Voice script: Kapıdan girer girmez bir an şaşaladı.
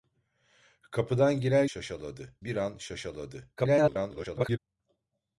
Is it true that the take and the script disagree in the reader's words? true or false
true